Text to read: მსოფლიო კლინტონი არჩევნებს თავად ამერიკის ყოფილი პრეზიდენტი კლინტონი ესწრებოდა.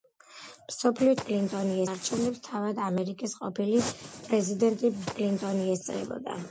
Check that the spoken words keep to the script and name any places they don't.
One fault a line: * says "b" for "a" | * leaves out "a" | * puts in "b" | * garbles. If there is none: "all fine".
all fine